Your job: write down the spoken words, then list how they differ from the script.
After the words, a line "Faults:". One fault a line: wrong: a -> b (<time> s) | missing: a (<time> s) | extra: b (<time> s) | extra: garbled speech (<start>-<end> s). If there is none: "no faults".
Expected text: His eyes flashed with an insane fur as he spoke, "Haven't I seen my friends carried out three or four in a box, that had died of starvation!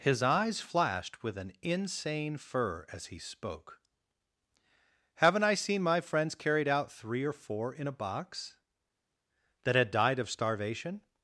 His eyes flashed with an insane fur as he spoke, "Haven't I seen my friends carried out three or four in a box, that had died of starvation!
Faults:
no faults